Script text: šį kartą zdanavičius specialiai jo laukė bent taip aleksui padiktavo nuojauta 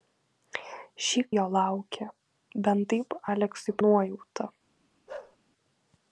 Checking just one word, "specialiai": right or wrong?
wrong